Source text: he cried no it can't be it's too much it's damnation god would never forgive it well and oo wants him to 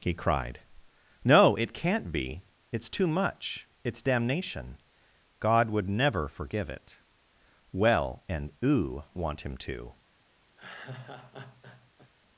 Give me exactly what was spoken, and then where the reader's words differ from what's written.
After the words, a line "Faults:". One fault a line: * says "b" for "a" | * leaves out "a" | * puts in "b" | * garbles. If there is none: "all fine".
he cried no it can't be it's too much it's damnation god would never forgive it well and oo want him to
Faults:
* says "want" for "wants"